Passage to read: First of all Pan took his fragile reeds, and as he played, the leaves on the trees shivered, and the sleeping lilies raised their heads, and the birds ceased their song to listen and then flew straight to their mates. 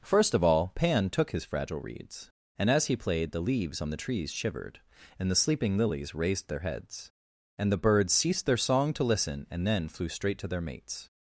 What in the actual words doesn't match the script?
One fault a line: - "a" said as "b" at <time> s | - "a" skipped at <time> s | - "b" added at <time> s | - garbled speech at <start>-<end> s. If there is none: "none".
none